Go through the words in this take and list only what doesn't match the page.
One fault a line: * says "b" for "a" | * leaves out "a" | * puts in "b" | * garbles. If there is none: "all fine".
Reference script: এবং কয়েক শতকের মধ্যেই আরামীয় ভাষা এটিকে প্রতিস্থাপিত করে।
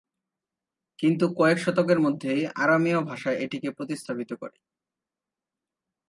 * says "কিন্তু" for "এবং"